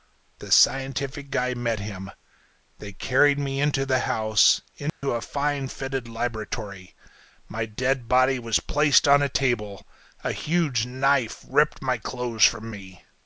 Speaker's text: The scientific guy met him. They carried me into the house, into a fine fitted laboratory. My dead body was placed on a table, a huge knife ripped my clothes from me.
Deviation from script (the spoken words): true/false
false